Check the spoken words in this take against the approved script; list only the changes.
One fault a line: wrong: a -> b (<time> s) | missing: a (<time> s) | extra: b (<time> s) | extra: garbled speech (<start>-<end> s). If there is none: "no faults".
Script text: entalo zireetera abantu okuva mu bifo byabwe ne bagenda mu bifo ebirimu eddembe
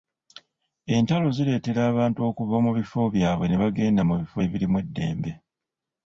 no faults